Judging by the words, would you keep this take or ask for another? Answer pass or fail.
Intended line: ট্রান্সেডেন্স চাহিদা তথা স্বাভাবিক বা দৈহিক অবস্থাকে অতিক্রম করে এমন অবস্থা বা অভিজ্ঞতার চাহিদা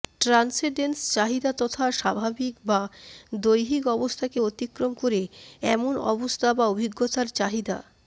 pass